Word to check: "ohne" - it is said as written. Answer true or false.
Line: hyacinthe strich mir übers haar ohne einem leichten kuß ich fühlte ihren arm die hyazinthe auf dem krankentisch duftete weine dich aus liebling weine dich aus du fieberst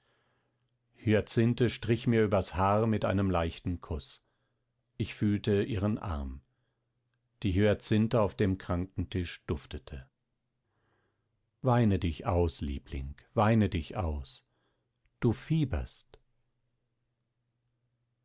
false